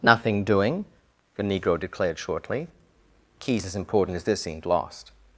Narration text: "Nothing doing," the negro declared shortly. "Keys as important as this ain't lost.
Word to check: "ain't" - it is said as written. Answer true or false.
false